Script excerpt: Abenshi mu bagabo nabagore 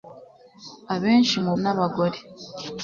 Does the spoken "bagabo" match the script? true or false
false